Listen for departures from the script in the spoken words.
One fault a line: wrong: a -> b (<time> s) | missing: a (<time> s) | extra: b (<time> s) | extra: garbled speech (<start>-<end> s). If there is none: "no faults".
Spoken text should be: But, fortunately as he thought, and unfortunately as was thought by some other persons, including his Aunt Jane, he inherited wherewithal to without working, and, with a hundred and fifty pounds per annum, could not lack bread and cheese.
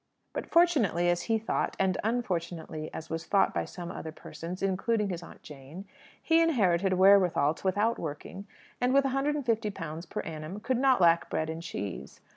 no faults